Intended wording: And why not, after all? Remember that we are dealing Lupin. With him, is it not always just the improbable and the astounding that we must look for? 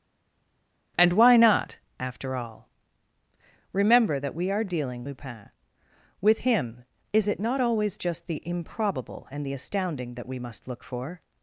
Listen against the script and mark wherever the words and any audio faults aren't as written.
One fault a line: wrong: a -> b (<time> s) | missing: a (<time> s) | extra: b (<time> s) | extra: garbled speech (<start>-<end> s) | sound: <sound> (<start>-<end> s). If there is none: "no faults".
no faults